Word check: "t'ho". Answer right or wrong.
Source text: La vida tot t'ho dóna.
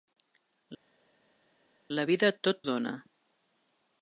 wrong